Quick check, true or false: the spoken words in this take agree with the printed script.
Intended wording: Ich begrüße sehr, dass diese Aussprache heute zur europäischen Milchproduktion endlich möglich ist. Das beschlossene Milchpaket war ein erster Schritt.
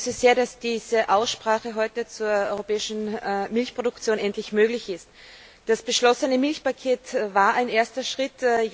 true